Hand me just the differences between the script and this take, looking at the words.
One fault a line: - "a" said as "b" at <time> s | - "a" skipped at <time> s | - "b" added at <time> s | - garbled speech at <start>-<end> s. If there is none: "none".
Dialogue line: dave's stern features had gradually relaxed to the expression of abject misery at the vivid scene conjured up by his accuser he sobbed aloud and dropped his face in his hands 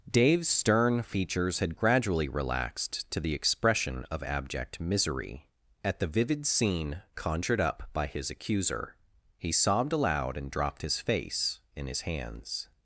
none